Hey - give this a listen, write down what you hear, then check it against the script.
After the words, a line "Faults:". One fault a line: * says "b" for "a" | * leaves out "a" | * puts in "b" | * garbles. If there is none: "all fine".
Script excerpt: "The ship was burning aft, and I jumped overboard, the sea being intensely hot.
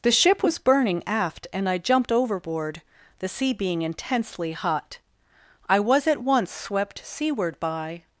"The ship was burning aft, and I jumped overboard, the sea being intensely hot. I was at once swept seaward by
Faults:
* puts in "I was at once swept seaward by"